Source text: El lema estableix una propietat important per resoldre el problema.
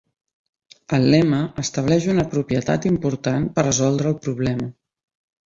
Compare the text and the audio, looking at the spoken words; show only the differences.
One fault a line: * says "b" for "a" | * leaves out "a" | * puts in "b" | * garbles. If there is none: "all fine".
all fine